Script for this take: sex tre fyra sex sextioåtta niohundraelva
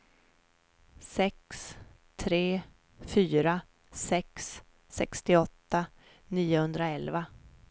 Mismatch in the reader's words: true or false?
false